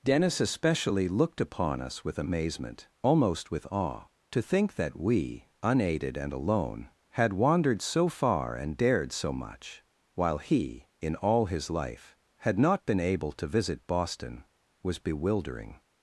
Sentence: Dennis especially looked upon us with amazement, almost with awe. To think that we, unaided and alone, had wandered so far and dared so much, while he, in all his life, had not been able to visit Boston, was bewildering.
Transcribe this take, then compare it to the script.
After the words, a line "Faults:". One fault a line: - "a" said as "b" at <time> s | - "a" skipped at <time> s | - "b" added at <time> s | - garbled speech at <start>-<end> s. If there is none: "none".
Dennis especially looked upon us with amazement, almost with awe. To think that we, unaided and alone, had wandered so far and dared so much, while he, in all his life, had not been able to visit Boston, was bewildering.
Faults:
none